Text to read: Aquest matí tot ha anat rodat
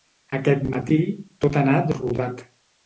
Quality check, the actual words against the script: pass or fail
pass